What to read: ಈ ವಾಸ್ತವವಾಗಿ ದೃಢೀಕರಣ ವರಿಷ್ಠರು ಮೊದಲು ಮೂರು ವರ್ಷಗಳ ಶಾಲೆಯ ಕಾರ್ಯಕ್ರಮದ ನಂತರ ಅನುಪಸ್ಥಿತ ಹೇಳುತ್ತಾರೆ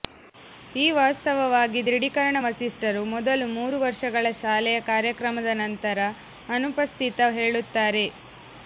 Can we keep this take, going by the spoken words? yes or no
yes